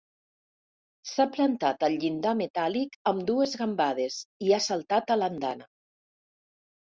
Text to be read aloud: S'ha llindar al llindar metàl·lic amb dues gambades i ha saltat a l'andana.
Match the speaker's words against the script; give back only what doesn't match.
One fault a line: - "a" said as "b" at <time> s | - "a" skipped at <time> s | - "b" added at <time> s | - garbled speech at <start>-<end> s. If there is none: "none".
- "llindar" said as "plantat" at 1.3 s